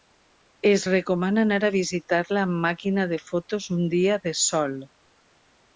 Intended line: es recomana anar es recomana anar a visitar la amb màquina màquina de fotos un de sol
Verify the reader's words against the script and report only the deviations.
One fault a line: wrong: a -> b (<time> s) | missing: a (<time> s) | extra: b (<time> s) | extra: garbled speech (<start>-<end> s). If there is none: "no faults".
missing: es recomana anar (1.6 s)
missing: màquina (3.1 s)
extra: dia (4.0 s)